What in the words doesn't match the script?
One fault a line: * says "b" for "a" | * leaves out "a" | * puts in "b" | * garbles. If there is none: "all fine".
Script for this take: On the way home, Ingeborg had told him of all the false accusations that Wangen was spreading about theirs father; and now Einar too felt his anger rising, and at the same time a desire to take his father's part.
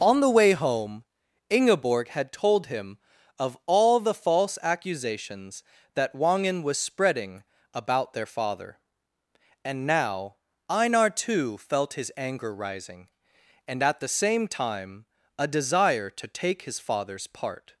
* says "their" for "theirs"